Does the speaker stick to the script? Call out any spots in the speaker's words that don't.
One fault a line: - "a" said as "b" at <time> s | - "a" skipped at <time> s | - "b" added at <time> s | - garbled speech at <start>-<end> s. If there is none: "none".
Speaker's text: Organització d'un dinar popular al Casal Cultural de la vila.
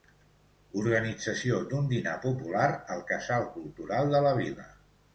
none